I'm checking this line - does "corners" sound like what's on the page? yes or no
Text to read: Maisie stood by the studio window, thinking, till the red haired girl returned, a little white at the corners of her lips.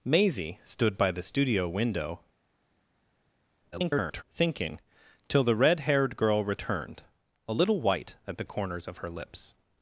yes